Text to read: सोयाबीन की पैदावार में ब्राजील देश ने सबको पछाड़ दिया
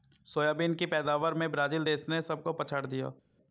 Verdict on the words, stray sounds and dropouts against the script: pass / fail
pass